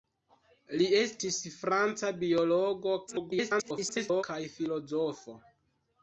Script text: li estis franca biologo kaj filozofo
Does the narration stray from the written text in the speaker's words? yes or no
yes